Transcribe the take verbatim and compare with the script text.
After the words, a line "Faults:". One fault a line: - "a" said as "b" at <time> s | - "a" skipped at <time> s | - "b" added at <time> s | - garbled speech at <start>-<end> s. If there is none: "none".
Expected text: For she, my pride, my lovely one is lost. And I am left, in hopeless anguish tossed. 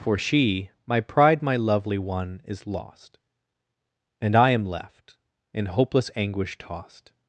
For she, my pride, my lovely one is lost. And I am left, in hopeless anguish tossed.
Faults:
none